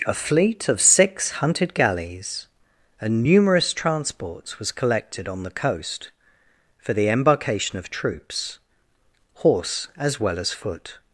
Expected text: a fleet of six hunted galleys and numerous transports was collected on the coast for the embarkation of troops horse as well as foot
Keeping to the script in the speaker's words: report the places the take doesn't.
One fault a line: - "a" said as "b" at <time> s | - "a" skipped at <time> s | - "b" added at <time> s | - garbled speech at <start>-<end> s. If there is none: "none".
none